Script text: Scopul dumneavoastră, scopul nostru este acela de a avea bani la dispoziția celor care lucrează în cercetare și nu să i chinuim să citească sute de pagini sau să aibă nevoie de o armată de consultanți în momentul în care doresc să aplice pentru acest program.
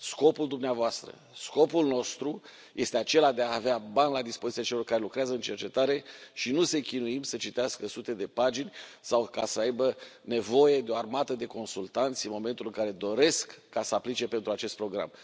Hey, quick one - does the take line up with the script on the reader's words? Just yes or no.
yes